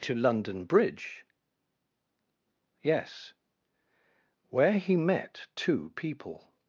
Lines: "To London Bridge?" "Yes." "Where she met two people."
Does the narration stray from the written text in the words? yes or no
yes